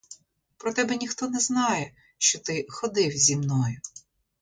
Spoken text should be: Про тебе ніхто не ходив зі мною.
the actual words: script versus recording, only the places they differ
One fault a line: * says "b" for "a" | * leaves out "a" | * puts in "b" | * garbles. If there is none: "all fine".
* puts in "знає що ти"